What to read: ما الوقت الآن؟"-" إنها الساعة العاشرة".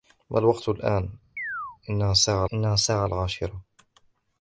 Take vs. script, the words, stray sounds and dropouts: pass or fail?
fail